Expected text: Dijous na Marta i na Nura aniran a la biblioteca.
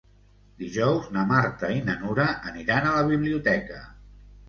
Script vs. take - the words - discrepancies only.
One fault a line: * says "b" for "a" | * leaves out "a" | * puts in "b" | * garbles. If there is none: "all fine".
all fine